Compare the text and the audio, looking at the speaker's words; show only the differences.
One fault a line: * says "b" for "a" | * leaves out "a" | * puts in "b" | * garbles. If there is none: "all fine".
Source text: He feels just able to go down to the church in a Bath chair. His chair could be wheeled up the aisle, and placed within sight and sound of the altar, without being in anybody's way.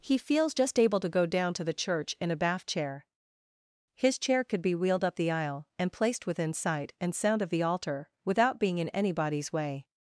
all fine